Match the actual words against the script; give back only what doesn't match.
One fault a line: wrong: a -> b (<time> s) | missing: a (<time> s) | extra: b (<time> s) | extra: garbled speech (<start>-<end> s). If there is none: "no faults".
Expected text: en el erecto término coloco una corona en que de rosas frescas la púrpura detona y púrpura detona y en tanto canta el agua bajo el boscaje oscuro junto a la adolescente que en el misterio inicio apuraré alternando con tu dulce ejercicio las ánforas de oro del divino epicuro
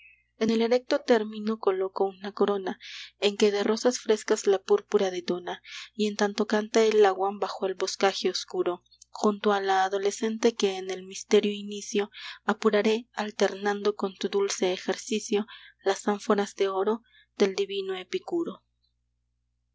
missing: púrpura detona y (6.1 s)